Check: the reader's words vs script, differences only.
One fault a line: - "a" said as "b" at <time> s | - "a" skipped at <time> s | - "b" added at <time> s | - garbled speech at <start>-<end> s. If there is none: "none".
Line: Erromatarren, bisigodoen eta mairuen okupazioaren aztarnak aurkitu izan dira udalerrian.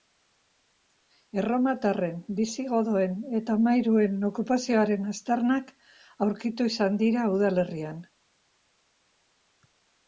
none